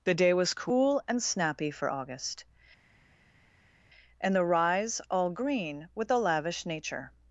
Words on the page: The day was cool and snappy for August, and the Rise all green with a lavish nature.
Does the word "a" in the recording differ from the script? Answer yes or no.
no